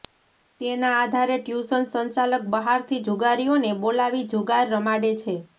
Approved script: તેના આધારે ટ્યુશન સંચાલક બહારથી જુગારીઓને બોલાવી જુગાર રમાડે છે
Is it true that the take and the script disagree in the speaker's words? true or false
false